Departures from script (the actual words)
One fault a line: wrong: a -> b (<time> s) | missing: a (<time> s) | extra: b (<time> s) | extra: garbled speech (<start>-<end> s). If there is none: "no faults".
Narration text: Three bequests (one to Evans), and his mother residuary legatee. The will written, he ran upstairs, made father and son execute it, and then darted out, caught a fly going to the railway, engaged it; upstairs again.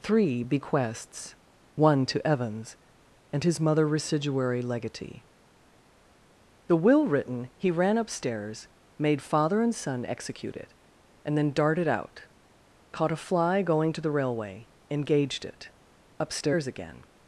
no faults